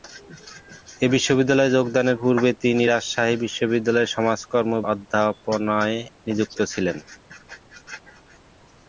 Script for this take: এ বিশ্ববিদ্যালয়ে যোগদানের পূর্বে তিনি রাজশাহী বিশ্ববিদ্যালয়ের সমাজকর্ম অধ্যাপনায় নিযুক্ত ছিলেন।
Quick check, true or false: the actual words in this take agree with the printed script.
true